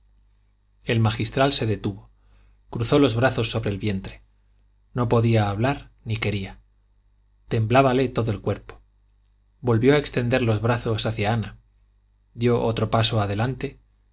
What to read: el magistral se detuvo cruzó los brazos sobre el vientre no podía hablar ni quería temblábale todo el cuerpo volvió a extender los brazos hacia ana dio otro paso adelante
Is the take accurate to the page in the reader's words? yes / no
yes